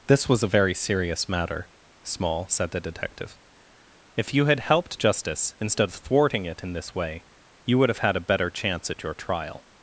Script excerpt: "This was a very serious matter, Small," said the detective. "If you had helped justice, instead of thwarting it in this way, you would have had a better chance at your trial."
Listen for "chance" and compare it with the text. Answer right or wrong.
right